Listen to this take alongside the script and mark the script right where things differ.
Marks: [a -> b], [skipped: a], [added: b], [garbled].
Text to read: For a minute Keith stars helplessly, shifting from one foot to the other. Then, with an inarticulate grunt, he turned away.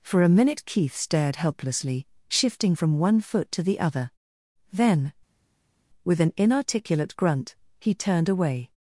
For a minute Keith [stars -> stared] helplessly, shifting from one foot to the other. Then, with an inarticulate grunt, he turned away.